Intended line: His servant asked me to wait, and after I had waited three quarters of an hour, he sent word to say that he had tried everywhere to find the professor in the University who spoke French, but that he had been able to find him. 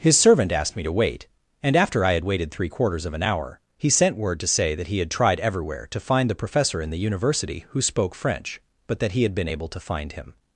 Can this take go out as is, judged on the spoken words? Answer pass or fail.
pass